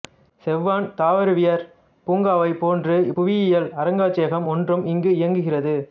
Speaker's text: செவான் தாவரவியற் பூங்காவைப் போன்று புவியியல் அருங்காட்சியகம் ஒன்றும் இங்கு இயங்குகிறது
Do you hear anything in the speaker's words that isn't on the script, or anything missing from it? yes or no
no